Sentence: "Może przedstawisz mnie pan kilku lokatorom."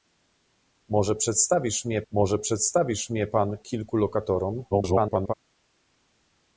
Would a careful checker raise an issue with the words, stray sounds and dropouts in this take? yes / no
yes